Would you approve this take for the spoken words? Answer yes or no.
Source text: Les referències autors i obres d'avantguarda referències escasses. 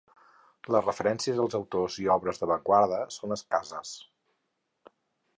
no